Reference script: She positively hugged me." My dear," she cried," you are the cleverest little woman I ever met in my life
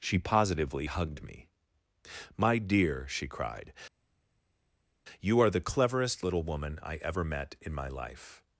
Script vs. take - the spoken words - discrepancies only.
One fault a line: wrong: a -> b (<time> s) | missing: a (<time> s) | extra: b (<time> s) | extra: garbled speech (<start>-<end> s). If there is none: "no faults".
no faults